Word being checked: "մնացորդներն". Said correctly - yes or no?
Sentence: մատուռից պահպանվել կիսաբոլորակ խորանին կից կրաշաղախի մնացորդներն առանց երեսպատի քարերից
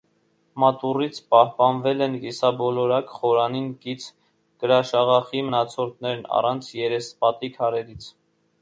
yes